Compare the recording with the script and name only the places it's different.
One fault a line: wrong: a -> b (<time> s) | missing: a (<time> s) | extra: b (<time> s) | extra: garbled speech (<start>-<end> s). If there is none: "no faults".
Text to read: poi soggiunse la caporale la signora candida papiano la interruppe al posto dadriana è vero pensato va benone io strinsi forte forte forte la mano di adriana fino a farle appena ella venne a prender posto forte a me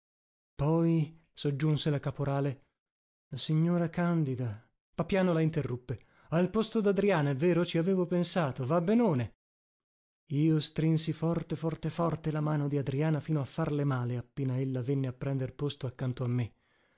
extra: ci avevo (7.7 s)
extra: male (13.8 s)
wrong: forte -> accanto (15.8 s)